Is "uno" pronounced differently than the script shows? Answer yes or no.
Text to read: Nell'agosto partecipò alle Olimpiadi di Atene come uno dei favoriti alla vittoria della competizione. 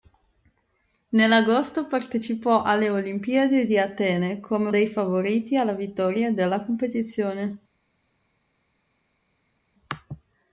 yes